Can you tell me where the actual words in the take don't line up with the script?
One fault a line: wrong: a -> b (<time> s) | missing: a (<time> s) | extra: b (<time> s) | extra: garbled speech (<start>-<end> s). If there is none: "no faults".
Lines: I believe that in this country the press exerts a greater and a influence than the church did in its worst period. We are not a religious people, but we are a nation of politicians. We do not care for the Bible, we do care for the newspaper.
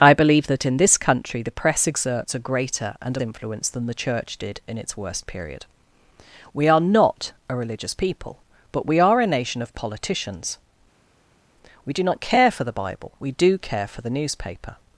no faults